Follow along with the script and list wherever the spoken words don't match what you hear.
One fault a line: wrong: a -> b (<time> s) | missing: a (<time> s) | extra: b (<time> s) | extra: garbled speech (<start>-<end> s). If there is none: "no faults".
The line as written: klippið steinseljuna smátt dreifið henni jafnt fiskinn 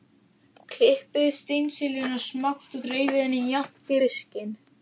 no faults